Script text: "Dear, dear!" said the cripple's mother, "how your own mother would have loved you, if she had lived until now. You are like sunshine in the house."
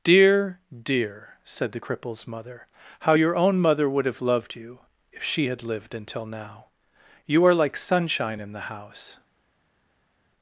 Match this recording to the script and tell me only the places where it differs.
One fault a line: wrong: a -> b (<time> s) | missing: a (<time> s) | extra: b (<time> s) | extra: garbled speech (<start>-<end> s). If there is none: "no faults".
no faults